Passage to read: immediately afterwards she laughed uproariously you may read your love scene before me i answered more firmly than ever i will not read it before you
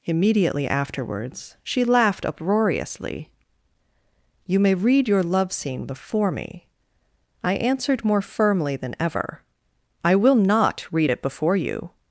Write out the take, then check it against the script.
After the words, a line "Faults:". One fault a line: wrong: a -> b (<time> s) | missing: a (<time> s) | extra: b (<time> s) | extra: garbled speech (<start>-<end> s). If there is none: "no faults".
immediately afterwards she laughed uproariously you may read your love scene before me i answered more firmly than ever i will not read it before you
Faults:
no faults